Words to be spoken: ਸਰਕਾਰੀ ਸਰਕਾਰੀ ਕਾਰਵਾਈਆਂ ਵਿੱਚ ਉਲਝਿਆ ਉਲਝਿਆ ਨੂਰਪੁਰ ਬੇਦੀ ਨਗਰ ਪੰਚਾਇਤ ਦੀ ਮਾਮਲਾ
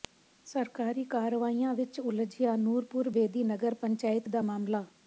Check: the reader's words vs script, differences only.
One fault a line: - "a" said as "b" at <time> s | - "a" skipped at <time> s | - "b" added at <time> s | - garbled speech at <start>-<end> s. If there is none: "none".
- "ਸਰਕਾਰੀ" skipped at 1.0 s
- "ਉਲਝਿਆ" skipped at 2.5 s
- "ਦੀ" said as "ਦਾ" at 4.3 s